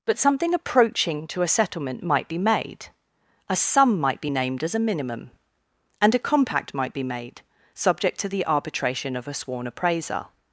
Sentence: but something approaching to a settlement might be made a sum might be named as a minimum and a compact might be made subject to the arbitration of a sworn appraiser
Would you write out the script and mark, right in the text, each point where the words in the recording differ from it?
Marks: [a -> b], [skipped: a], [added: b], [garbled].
but something approaching to a settlement might be made a sum might be named as a minimum and a compact might be made subject to the arbitration of a sworn appraiser